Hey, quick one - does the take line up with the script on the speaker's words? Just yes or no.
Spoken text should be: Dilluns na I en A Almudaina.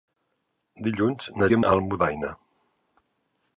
yes